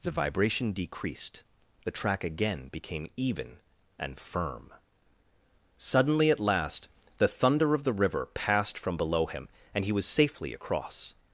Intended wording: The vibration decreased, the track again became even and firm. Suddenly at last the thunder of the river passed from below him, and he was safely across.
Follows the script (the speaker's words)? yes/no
yes